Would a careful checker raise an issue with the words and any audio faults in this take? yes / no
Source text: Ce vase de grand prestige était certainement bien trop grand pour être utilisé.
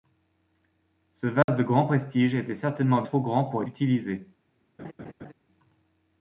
yes